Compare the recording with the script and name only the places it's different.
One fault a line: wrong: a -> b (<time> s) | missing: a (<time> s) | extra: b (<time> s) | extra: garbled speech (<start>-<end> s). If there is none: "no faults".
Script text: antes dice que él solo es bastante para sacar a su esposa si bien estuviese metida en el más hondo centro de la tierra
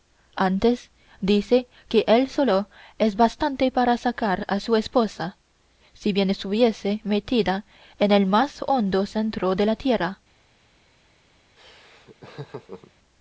no faults